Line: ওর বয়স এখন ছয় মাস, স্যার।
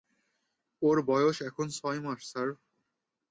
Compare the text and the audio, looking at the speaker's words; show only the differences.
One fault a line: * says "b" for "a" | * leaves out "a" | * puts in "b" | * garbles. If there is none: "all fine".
all fine